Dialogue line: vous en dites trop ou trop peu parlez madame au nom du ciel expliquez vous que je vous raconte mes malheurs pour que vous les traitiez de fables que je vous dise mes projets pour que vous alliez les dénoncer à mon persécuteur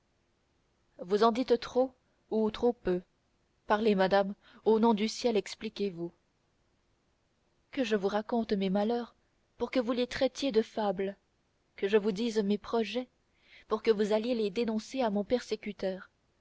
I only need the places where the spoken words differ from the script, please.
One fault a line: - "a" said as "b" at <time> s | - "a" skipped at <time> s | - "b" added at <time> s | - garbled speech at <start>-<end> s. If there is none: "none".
none